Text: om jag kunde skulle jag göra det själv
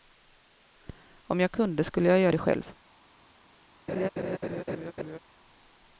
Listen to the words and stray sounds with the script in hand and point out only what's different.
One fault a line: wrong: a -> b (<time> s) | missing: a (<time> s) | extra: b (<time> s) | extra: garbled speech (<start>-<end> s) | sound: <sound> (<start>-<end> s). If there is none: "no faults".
sound: laugh (3.9-5.2 s)